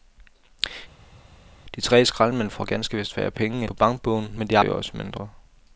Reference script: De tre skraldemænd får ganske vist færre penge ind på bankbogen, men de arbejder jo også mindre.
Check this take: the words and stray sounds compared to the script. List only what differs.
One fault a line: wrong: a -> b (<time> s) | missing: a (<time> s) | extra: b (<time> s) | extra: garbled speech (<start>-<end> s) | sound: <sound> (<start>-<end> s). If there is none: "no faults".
missing: ind (3.6 s)
missing: arbejder (4.6 s)